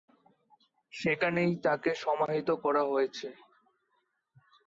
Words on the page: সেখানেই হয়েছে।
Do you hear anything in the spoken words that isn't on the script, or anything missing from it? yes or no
yes